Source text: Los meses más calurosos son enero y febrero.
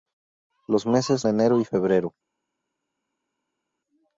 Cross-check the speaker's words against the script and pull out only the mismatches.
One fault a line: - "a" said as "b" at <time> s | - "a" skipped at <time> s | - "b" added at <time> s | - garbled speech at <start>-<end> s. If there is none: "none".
- "más calurosos son" skipped at 1.3 s